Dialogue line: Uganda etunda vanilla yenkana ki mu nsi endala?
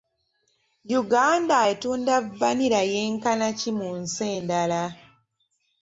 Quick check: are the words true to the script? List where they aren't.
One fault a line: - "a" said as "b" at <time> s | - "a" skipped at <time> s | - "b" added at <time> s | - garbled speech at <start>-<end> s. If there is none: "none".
none